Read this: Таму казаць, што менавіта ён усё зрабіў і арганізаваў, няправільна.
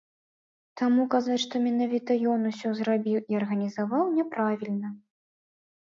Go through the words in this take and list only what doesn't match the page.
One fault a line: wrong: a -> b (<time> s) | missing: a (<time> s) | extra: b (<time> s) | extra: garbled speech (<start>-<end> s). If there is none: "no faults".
no faults